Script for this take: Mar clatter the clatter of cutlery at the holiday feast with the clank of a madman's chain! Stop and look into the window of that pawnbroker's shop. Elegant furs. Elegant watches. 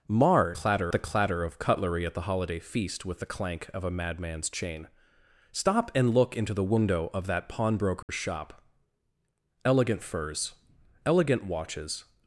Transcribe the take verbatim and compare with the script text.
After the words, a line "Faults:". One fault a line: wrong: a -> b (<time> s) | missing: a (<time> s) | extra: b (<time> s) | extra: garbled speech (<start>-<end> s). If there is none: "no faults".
Mar clatter the clatter of cutlery at the holiday feast with the clank of a madman's chain! Stop and look into the window of that pawnbroker's shop. Elegant furs. Elegant watches.
Faults:
no faults